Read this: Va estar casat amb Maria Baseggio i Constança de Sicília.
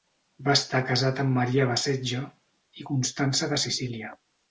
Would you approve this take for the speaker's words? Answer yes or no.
yes